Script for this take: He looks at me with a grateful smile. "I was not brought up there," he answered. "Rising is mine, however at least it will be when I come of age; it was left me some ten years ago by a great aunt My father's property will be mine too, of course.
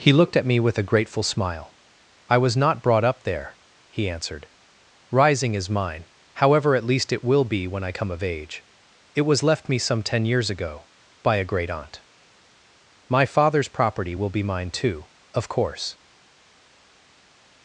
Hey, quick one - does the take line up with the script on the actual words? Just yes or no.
no